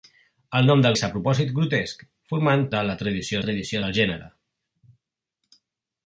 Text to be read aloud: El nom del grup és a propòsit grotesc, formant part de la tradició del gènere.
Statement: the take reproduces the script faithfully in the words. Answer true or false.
false